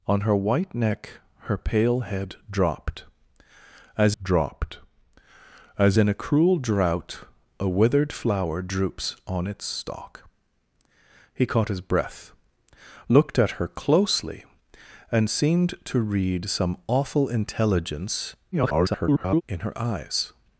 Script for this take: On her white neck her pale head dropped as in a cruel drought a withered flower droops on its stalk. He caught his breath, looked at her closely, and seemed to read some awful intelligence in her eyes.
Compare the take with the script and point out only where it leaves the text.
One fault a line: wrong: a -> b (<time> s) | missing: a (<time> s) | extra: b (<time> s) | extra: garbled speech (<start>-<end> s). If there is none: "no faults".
extra: dropped as (4.2 s)
extra: garbled speech (18.5-19.4 s)